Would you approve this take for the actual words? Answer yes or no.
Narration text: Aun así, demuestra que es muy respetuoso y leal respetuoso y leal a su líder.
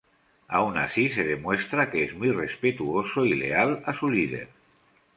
no